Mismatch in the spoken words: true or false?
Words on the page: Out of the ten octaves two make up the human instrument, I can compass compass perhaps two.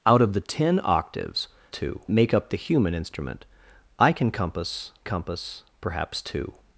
false